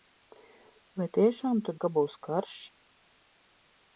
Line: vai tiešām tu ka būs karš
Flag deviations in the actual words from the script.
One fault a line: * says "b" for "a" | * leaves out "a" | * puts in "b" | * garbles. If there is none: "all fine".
all fine